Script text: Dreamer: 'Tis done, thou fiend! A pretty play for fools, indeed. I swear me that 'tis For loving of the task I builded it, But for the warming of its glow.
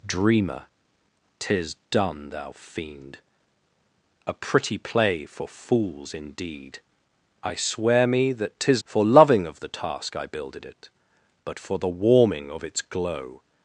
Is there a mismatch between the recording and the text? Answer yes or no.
no